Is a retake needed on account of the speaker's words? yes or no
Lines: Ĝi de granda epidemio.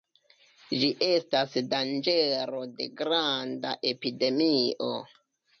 yes